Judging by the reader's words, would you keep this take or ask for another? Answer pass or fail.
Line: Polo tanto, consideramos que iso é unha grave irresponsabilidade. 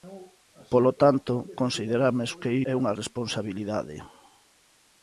fail